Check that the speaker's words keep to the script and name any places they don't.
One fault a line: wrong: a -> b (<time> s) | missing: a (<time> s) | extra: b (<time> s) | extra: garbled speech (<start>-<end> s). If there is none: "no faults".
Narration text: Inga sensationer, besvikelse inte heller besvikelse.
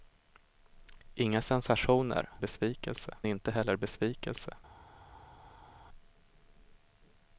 no faults